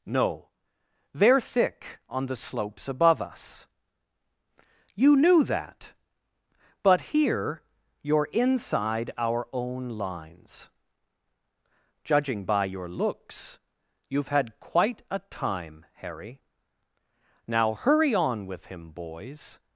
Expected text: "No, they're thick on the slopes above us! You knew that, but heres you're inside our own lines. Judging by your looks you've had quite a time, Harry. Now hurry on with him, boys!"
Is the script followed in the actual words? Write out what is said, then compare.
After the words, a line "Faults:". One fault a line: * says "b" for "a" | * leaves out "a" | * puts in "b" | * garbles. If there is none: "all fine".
"No, they're thick on the slopes above us! You knew that, but here you're inside our own lines. Judging by your looks you've had quite a time, Harry. Now hurry on with him, boys!"
Faults:
* says "here" for "heres"